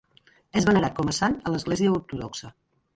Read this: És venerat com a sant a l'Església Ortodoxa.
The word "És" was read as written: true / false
true